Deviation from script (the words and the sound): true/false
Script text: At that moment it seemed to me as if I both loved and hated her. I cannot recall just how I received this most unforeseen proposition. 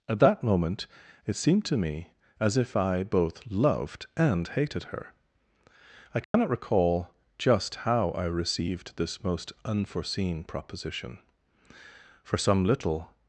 true